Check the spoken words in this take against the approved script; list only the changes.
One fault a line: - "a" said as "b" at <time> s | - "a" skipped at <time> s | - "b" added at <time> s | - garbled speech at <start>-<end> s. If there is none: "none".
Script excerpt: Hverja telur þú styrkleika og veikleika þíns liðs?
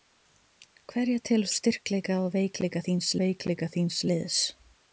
- "þú" skipped at 1.5 s
- "veikleika þíns" added at 3.2 s